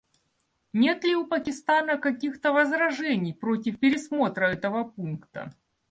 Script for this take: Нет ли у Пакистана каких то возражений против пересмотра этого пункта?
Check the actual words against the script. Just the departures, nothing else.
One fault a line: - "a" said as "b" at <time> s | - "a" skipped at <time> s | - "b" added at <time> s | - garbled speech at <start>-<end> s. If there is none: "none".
none